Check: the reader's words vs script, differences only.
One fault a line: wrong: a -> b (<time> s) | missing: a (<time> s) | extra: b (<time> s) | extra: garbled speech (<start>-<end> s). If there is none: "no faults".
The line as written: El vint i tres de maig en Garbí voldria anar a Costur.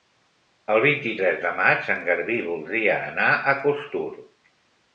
no faults